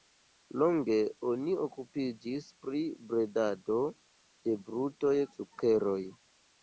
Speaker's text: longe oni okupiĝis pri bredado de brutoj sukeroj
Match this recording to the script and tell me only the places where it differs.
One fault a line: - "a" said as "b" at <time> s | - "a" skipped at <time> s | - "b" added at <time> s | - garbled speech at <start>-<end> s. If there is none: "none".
none